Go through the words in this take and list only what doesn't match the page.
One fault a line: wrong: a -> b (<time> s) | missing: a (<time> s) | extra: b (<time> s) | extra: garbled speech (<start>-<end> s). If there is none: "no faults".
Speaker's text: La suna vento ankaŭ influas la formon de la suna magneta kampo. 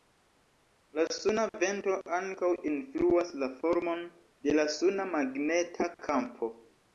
no faults